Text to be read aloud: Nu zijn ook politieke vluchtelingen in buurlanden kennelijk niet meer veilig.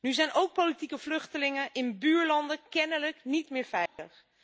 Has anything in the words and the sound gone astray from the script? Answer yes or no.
yes